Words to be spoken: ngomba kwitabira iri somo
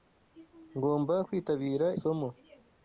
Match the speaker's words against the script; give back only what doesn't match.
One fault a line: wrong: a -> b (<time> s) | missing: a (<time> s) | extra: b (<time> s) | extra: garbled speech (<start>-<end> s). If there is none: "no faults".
missing: iri (1.9 s)